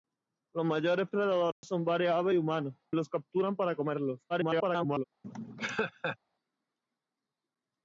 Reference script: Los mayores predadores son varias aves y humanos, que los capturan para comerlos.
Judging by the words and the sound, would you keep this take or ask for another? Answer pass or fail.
fail